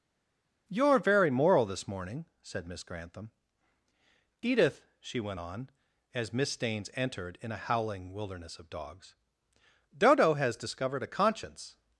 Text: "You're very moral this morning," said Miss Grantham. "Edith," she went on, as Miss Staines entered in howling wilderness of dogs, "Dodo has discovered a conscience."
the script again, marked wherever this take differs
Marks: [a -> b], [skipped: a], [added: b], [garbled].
"You're very moral this morning," said Miss Grantham. "Edith," she went on, as Miss Staines entered in [added: a] howling wilderness of dogs, "Dodo has discovered a conscience."